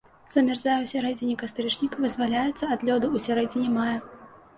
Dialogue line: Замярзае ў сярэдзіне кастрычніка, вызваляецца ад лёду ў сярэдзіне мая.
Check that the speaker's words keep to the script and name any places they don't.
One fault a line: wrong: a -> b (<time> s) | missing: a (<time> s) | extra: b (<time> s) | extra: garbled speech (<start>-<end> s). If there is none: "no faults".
no faults